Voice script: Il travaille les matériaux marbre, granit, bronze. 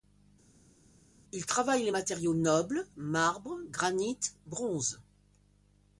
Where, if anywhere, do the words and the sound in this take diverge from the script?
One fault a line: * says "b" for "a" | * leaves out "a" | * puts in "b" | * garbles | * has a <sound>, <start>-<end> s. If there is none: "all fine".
* puts in "nobles"